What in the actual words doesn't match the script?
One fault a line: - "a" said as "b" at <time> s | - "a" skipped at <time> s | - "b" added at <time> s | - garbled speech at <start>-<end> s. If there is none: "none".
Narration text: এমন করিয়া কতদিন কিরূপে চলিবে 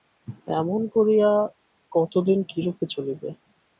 none